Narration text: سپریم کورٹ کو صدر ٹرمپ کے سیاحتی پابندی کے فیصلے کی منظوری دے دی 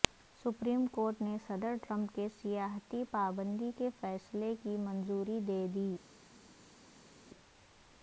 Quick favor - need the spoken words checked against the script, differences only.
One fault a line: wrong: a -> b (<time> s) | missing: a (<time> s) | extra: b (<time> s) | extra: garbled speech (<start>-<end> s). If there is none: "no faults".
wrong: کو -> نے (1.2 s)